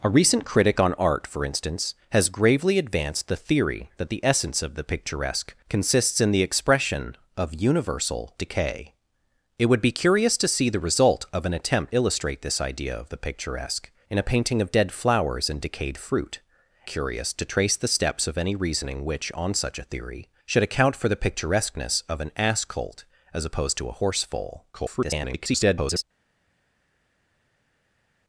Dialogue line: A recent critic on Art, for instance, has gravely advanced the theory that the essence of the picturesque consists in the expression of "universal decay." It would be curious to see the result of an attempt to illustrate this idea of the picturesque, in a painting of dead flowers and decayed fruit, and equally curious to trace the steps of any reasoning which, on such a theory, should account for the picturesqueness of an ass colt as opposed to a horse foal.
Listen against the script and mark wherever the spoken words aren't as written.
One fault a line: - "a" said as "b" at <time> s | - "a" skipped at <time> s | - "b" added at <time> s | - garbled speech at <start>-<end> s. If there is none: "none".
- "to" skipped at 11.9 s
- "and equally" skipped at 16.4 s
- garbled speech at 24.7-26.0 s